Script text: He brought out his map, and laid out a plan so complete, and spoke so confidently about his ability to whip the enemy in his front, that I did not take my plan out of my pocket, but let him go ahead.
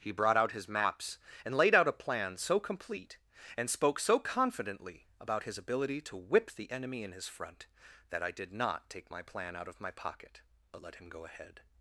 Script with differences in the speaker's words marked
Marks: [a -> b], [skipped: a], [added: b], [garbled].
He brought out his [map, -> maps] and laid out a plan so complete, and spoke so confidently about his ability to whip the enemy in his front, that I did not take my plan out of my pocket, but let him go ahead.